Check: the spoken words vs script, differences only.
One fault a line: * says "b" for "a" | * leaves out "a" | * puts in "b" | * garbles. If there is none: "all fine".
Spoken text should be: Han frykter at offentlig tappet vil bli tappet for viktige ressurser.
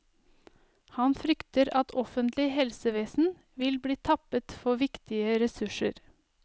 * says "helsevesen" for "tappet"